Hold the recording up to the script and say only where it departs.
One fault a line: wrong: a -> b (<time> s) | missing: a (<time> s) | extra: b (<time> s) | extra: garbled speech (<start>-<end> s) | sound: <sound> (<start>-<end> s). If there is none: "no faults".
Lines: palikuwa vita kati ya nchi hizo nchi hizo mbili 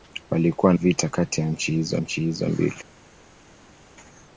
no faults